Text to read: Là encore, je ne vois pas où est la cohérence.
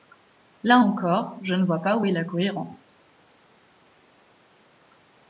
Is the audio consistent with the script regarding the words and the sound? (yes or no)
yes